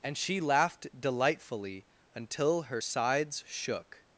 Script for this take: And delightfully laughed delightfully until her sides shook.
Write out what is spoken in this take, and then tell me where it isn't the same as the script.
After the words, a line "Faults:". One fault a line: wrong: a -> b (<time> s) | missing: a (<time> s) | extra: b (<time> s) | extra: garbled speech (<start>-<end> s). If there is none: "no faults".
And she laughed delightfully until her sides shook.
Faults:
wrong: delightfully -> she (0.2 s)